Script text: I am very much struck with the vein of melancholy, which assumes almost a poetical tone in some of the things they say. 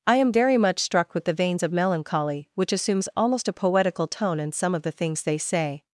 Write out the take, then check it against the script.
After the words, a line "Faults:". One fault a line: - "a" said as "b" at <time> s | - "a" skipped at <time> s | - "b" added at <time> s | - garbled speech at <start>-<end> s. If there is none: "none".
I am very much struck with the veins of melancholy, which assumes almost a poetical tone in some of the things they say.
Faults:
- "vein" said as "veins" at 1.3 s